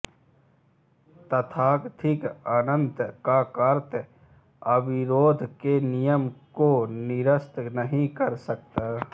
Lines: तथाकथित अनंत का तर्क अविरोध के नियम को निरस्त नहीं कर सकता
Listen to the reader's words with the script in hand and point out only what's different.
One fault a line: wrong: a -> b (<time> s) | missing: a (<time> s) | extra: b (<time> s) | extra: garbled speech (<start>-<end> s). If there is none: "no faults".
no faults